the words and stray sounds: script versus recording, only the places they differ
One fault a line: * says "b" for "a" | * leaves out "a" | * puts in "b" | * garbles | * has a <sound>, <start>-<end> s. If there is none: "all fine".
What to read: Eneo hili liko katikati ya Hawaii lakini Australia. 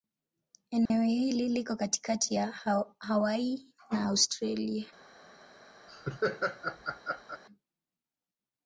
* has a dropout, 0.9-0.9 s
* says "na" for "lakini"
* has a laugh, 5.9-7.4 s